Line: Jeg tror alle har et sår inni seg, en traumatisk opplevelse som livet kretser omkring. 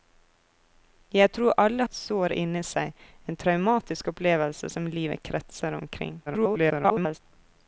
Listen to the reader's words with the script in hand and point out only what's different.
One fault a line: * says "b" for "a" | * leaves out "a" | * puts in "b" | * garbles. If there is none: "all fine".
* leaves out "har"
* garbles